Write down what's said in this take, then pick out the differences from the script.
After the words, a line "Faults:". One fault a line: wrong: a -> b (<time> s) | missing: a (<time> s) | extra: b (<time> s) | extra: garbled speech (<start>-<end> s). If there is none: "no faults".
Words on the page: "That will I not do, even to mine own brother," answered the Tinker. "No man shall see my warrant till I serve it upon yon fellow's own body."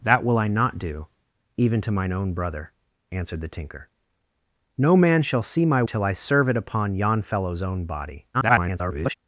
"That will I not do, even to mine own brother," answered the Tinker. "No man shall see my till I serve it upon yon fellow's own body." [garbled]
Faults:
missing: warrant (5.8 s)
extra: garbled speech (8.3-9.1 s)